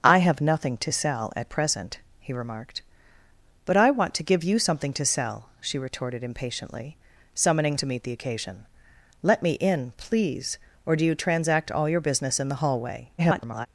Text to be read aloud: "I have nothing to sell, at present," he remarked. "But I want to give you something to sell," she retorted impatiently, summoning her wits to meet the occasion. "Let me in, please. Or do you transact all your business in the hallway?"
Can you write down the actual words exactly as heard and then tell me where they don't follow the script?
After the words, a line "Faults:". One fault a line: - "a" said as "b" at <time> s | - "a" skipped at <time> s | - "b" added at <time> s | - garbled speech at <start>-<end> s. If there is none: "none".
"I have nothing to sell, at present," he remarked. "But I want to give you something to sell," she retorted impatiently, summoning to meet the occasion. "Let me in, please. Or do you transact all your business in the hallway?" [garbled]
Faults:
- "her wits" skipped at 7.8 s
- garbled speech at 13.2-13.7 s